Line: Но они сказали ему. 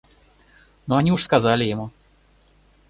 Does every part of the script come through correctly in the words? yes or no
no